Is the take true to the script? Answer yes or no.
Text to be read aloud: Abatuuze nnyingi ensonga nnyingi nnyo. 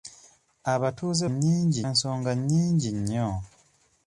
yes